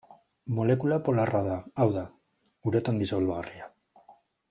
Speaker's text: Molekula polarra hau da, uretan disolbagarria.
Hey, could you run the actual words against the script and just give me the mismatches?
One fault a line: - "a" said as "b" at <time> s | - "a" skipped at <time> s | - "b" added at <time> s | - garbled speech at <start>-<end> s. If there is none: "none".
- "da" added at 1.5 s